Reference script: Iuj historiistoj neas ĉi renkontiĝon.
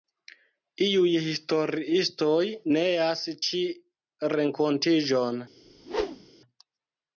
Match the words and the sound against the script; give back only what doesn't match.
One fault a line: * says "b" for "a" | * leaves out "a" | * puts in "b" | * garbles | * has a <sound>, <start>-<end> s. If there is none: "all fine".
* has a whoosh, 5.6-6.3 s